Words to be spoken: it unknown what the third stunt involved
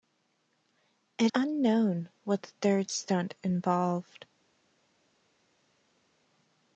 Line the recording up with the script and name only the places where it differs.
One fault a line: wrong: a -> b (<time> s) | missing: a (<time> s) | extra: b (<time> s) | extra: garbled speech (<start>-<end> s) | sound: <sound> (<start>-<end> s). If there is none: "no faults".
no faults